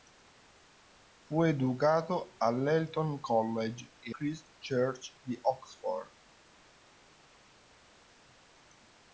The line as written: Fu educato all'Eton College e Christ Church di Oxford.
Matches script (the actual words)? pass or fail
pass